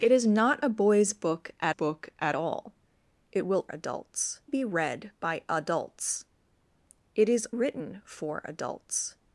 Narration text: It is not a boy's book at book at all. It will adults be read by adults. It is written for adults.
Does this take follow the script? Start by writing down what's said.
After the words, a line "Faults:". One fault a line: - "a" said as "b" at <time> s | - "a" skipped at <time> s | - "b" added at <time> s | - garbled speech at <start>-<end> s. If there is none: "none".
It is not a boy's book at book at all. It will adults be read by adults. It is written for adults.
Faults:
none